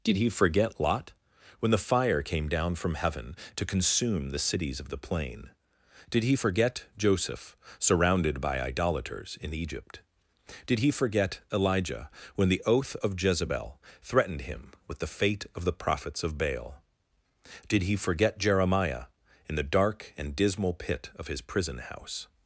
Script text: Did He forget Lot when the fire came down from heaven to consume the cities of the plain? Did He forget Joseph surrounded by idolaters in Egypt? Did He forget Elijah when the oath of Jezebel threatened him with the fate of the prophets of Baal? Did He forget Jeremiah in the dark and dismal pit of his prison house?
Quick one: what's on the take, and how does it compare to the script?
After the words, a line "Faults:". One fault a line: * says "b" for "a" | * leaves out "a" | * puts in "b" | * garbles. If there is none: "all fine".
Did He forget Lot when the fire came down from heaven to consume the cities of the plain? Did He forget Joseph surrounded by idolaters in Egypt? Did He forget Elijah when the oath of Jezebel threatened him with the fate of the prophets of Baal? Did He forget Jeremiah in the dark and dismal pit of his prison house?
Faults:
all fine